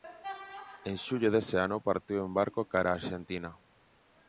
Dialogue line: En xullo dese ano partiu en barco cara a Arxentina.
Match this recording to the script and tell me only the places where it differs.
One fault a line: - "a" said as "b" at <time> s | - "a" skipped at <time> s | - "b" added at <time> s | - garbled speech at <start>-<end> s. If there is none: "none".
none